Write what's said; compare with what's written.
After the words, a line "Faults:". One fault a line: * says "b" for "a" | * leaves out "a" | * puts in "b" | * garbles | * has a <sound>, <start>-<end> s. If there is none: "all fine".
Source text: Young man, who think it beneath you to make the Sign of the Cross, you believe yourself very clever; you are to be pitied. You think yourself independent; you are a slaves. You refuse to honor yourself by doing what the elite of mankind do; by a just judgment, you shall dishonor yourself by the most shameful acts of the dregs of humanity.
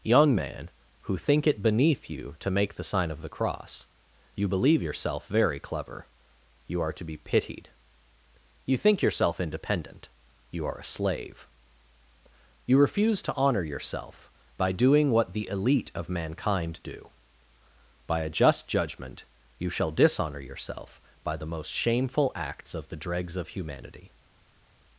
Young man, who think it beneath you to make the Sign of the Cross, you believe yourself very clever; you are to be pitied. You think yourself independent; you are a slave. You refuse to honor yourself by doing what the elite of mankind do; by a just judgment, you shall dishonor yourself by the most shameful acts of the dregs of humanity.
Faults:
* says "slave" for "slaves"